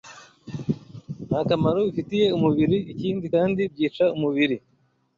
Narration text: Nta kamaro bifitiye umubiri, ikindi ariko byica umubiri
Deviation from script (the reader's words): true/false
true